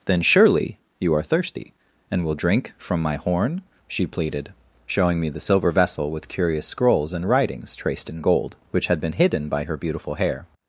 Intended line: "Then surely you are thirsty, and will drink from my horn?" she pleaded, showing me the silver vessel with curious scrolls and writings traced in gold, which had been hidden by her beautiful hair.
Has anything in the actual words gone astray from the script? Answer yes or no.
no